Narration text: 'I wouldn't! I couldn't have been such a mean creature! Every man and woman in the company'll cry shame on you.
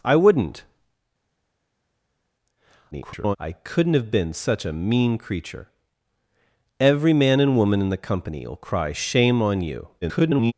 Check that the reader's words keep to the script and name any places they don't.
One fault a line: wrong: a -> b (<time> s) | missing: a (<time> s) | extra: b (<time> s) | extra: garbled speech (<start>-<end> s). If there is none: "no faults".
extra: garbled speech (2.9-3.4 s)
extra: garbled speech (10.0-10.5 s)